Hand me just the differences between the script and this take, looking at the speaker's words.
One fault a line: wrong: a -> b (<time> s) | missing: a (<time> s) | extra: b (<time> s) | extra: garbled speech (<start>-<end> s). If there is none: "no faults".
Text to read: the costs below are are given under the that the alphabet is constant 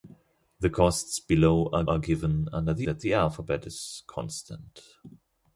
no faults